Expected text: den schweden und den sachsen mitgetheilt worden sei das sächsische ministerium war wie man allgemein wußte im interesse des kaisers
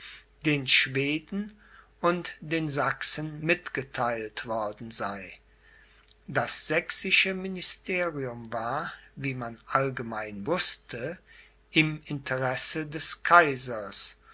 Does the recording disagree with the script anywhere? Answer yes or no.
no